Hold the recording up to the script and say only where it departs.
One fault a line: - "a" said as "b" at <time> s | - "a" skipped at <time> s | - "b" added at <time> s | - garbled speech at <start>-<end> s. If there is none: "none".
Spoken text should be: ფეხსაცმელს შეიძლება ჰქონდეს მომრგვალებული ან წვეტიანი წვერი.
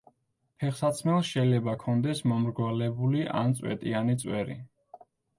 none